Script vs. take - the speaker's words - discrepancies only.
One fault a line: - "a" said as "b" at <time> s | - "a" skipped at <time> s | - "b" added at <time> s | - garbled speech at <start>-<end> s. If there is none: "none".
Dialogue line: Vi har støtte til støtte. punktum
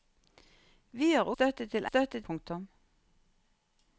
none